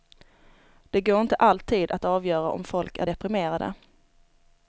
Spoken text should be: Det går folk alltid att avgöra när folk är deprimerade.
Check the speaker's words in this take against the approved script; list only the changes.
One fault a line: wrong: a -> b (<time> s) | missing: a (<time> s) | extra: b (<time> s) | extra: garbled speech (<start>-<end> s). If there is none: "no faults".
wrong: folk -> inte (1.2 s)
wrong: när -> om (2.5 s)